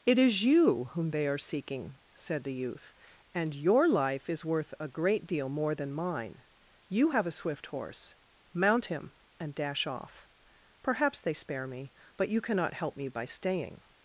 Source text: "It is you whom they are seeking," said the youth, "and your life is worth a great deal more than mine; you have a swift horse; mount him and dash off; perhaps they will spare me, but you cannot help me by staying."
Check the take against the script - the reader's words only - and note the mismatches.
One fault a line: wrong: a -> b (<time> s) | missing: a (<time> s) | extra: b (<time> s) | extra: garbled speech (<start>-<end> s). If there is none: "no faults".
missing: will (11.3 s)